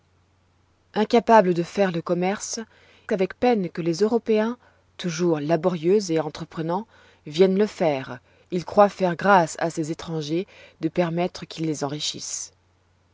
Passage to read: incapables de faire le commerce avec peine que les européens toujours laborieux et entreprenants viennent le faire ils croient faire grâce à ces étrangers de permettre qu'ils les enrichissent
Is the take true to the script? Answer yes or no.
yes